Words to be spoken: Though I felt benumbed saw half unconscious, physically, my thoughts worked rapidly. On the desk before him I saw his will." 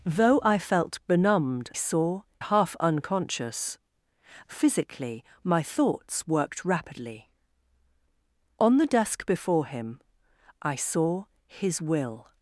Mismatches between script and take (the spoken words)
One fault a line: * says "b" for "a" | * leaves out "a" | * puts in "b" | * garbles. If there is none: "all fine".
all fine